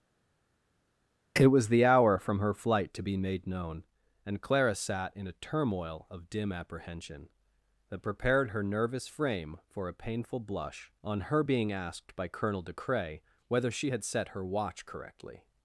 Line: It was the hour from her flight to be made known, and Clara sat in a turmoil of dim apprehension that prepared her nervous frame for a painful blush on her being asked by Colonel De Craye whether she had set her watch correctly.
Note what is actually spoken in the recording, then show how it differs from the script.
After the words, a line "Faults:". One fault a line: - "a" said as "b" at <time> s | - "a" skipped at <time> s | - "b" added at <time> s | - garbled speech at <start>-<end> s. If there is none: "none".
It was the hour from her flight to be made known, and Clara sat in a turmoil of dim apprehension that prepared her nervous frame for a painful blush on her being asked by Colonel De Craye whether she had set her watch correctly.
Faults:
none